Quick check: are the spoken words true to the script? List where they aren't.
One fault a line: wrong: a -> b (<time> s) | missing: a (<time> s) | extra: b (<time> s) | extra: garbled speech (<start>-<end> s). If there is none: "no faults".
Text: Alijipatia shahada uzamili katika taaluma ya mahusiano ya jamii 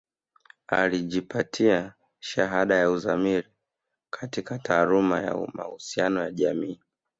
extra: ya (2.8 s)